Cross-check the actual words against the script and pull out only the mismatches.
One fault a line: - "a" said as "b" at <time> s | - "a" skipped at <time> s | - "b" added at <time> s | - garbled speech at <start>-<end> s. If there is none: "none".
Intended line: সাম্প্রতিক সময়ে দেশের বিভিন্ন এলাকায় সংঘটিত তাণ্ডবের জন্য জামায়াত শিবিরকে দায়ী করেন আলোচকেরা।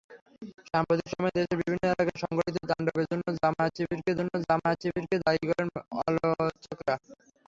- "জন্য জামায়াত শিবিরকে" added at 4.2 s